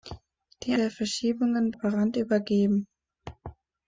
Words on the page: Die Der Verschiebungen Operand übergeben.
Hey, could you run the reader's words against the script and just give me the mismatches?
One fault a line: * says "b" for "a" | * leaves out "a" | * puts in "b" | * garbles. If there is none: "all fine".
all fine